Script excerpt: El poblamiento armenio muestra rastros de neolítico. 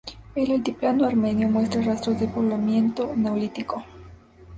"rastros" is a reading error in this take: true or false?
false